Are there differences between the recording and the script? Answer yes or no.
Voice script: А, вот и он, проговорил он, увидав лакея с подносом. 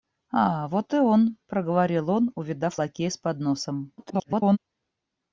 yes